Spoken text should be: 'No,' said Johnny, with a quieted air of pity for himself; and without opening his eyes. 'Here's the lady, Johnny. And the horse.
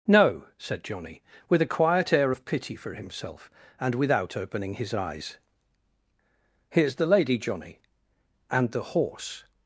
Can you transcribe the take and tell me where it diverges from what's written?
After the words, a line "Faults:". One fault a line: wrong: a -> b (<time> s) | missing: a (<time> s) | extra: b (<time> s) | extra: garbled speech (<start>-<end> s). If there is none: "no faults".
'No,' said Johnny, with a quiet air of pity for himself; and without opening his eyes. 'Here's the lady, Johnny. And the horse.
Faults:
wrong: quieted -> quiet (1.8 s)